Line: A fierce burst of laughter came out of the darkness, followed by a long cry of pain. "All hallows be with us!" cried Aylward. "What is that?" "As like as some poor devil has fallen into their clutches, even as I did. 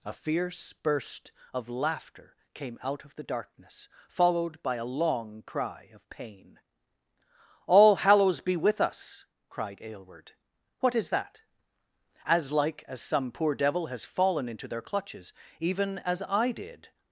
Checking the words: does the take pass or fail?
pass